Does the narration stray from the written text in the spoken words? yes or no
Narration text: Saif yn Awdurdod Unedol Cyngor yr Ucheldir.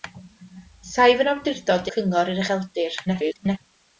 yes